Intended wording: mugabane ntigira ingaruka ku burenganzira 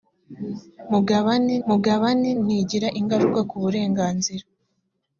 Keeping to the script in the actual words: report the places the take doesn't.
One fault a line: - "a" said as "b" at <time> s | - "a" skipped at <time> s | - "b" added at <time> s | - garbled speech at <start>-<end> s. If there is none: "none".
- "mugabane" added at 1.7 s